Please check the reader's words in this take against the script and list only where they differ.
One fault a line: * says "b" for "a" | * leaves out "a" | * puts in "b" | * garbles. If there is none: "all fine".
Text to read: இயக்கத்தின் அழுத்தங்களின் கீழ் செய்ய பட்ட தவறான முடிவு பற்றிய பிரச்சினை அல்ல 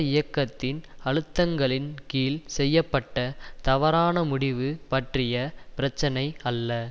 all fine